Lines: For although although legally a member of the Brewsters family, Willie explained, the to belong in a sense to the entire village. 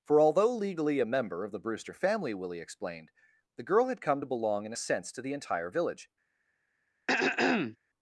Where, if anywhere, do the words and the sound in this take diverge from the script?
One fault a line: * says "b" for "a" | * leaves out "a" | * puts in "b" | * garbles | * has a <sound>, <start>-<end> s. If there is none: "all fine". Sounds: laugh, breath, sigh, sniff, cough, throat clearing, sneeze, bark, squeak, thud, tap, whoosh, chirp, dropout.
* leaves out "although"
* says "Brewster" for "Brewsters"
* puts in "girl had come"
* has a throat clearing, 7.1-7.8 s